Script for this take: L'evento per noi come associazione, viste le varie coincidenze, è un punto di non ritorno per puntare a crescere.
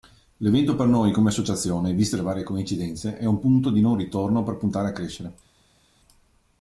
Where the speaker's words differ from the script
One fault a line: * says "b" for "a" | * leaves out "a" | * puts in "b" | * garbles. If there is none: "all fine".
all fine